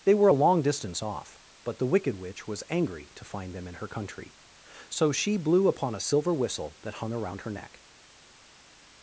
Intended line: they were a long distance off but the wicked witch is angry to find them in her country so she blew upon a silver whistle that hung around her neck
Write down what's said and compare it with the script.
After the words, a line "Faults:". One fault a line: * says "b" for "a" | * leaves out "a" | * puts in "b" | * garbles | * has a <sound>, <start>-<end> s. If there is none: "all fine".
they were a long distance off but the wicked witch was angry to find them in her country so she blew upon a silver whistle that hung around her neck
Faults:
* says "was" for "is"